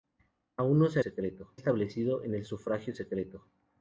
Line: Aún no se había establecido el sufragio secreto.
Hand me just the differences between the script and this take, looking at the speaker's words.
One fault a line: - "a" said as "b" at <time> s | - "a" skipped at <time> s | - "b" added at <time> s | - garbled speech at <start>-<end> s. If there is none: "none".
- "había" said as "secreto" at 1.0 s